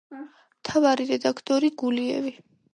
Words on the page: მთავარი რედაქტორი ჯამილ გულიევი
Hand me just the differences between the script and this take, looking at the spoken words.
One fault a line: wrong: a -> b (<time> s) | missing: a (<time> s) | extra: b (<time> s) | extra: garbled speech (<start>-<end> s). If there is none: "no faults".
missing: ჯამილ (1.7 s)